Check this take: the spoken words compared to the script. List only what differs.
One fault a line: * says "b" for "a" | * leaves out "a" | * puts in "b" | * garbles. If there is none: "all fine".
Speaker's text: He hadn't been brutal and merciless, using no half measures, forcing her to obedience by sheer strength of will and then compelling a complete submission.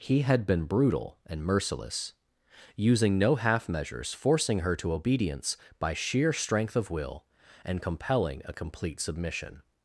* says "had" for "hadn't"
* leaves out "then"